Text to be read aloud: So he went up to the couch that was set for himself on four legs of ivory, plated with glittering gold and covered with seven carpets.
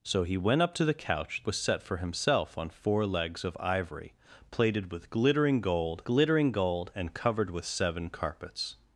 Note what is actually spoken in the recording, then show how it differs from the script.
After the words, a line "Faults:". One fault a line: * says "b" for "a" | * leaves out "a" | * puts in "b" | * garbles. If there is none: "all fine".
So he went up to the couch was set for himself on four legs of ivory, plated with glittering gold glittering gold and covered with seven carpets.
Faults:
* leaves out "that"
* puts in "glittering gold"